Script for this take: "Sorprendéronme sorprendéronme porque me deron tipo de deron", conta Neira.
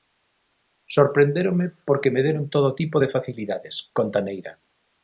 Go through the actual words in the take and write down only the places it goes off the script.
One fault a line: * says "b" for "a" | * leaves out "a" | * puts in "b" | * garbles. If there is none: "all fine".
* leaves out "sorprendéronme"
* puts in "todo"
* says "facilidades" for "deron"